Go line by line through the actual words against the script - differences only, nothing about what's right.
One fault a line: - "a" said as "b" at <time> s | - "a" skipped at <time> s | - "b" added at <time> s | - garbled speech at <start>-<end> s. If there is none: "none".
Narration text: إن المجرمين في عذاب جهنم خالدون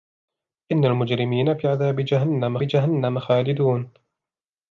- "جهنم" added at 2.6 s